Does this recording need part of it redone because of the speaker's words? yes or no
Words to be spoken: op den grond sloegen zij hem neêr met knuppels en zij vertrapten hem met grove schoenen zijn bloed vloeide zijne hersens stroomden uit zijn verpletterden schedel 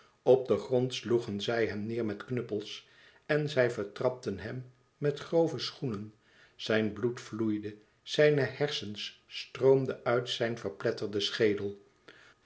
no